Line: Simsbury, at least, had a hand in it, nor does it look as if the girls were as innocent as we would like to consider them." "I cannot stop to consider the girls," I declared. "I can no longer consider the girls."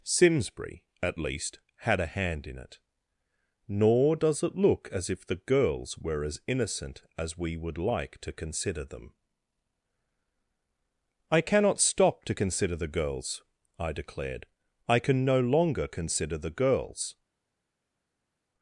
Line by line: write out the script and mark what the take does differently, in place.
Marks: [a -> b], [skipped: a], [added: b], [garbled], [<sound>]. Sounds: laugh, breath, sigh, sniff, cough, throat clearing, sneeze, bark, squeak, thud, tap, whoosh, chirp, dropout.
Simsbury, at least, had a hand in it, nor does it look as if the girls were as innocent as we would like to consider them." "I cannot stop to consider the girls," I declared. "I can no longer consider the girls."